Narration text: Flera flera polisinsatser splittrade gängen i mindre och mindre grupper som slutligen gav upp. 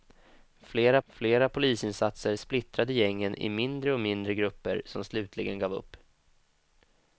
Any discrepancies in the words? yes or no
no